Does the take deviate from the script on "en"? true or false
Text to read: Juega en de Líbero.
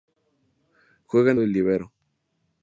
false